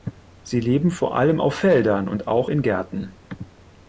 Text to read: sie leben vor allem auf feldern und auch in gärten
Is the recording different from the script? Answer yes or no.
no